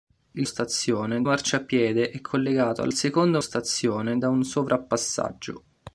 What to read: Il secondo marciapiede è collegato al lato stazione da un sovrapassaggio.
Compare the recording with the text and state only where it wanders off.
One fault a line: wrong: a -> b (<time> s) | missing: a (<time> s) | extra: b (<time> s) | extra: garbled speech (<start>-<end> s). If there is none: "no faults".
wrong: secondo -> stazione (0.4 s)
wrong: lato -> secondo (2.9 s)